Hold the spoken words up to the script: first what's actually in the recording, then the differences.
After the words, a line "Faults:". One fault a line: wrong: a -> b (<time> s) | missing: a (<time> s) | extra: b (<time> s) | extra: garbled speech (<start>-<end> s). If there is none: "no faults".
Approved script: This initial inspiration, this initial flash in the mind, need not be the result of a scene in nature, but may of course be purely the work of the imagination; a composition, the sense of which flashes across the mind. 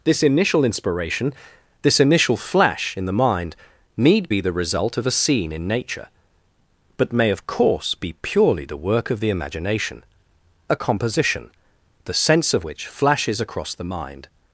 This initial inspiration, this initial flash in the mind, need be the result of a scene in nature, but may of course be purely the work of the imagination; a composition, the sense of which flashes across the mind.
Faults:
missing: not (4.3 s)